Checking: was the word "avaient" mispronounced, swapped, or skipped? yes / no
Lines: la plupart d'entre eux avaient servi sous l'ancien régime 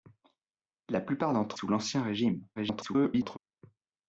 yes